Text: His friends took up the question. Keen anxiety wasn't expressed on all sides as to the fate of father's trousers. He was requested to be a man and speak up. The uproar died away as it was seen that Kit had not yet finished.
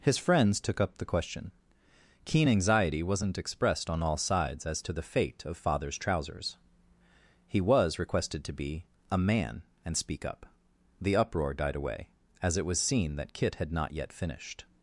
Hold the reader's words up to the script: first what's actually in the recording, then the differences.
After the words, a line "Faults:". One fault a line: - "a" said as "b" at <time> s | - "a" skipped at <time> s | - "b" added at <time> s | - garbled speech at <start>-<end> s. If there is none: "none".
His friends took up the question. Keen anxiety wasn't expressed on all sides as to the fate of father's trousers. He was requested to be a man and speak up. The uproar died away as it was seen that Kit had not yet finished.
Faults:
none